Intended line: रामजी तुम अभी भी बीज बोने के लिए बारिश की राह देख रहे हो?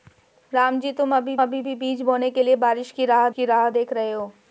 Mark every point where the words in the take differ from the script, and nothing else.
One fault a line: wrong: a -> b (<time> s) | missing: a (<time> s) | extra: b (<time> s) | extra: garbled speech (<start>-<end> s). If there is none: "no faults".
extra: अभी (1.4 s)
extra: की राह (3.3 s)